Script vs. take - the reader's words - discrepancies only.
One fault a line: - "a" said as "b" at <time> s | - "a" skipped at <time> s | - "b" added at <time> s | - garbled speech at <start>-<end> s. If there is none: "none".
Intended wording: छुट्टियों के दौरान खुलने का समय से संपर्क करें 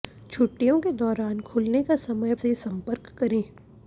none